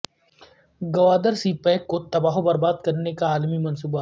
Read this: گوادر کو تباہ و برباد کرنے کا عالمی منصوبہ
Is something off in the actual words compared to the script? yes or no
yes